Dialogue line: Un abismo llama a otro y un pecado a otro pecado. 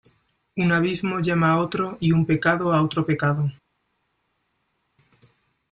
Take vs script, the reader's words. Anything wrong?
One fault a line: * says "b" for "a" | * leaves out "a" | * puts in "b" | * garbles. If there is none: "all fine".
all fine